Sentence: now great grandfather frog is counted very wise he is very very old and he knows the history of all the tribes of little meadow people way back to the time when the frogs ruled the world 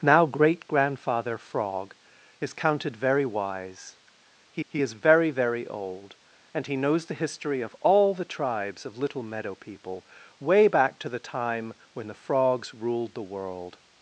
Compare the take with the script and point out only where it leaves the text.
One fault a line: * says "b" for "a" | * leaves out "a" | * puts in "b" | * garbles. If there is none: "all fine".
* puts in "he"